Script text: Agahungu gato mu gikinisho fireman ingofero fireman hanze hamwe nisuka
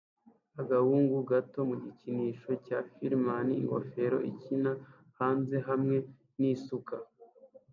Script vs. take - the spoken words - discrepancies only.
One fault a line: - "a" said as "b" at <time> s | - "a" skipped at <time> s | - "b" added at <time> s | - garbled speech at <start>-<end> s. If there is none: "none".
- "cya" added at 2.6 s
- "fireman" said as "ikina" at 4.3 s